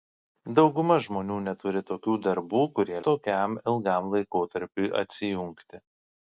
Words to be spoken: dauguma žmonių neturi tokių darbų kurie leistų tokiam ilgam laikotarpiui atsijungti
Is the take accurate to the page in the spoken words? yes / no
no